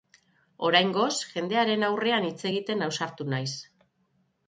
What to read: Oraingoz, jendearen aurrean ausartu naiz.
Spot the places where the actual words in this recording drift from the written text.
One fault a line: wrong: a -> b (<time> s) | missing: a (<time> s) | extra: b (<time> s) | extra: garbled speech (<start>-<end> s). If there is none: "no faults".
extra: hitz egiten (2.3 s)